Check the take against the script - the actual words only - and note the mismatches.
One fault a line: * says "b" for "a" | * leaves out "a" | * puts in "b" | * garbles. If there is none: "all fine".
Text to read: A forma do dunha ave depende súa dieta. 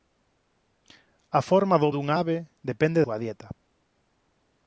all fine